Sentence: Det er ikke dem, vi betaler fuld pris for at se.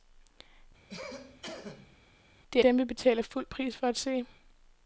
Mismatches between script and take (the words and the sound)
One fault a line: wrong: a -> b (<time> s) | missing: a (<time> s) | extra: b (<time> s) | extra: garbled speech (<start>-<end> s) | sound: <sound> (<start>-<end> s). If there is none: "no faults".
sound: cough (0.9-2.0 s)
missing: ikke (2.6 s)